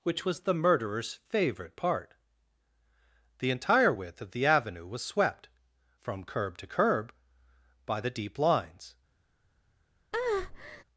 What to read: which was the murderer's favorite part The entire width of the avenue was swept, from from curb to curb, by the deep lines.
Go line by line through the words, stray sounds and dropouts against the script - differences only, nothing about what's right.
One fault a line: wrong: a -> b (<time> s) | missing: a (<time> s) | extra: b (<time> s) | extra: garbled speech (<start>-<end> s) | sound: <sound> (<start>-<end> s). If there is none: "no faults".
missing: from (6.2 s)
sound: breath (10.1-10.8 s)